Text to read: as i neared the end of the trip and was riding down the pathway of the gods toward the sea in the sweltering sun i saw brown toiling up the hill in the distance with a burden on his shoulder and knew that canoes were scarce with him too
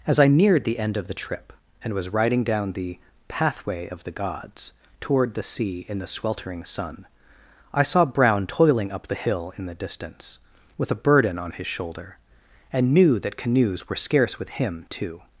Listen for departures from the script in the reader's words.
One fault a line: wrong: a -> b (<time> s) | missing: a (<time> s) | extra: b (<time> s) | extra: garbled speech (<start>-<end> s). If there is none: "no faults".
no faults